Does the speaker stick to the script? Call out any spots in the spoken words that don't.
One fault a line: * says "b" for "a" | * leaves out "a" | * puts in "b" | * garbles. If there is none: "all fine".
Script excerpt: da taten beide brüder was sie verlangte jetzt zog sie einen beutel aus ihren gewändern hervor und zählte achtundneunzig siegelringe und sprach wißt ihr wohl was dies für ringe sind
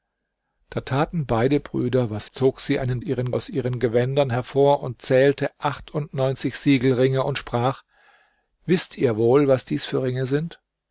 * leaves out "sie verlangte jetzt"
* says "ihren" for "beutel"